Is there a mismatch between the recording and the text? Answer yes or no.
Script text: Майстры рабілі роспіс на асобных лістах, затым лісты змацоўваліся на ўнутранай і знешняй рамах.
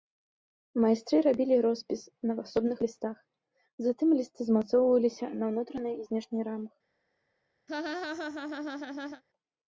no